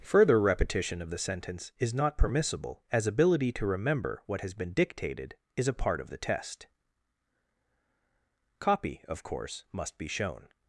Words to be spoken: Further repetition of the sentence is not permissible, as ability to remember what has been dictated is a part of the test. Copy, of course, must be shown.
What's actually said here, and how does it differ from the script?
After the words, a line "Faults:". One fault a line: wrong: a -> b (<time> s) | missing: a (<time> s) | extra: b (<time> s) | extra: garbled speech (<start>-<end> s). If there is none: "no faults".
Further repetition of the sentence is not permissible, as ability to remember what has been dictated is a part of the test. Copy, of course, must be shown.
Faults:
no faults